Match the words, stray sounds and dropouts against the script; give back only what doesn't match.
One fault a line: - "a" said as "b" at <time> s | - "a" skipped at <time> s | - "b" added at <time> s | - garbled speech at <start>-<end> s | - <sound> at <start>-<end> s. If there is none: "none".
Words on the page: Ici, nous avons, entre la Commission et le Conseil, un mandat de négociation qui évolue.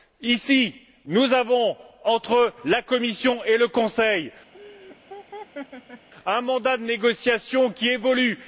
- laugh at 4.5-6.1 s